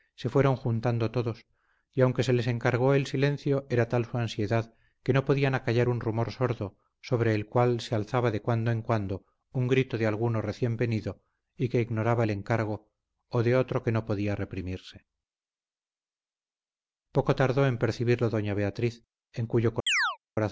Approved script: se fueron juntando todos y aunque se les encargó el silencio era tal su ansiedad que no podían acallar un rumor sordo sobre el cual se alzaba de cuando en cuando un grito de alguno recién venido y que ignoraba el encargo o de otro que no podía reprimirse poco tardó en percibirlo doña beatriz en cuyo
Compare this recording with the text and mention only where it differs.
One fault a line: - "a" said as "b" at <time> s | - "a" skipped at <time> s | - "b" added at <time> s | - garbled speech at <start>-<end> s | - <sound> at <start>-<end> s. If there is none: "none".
- chirp at 19.9-20.2 s